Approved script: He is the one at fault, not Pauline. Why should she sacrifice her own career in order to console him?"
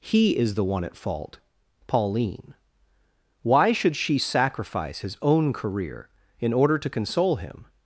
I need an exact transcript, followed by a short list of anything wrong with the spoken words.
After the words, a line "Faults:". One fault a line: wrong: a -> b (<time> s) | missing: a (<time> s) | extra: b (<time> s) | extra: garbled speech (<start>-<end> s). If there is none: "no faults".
He is the one at fault, Pauline. Why should she sacrifice his own career in order to console him?"
Faults:
missing: not (1.4 s)
wrong: her -> his (5.0 s)